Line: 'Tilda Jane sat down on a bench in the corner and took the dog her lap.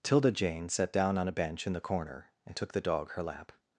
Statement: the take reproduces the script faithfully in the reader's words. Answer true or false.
true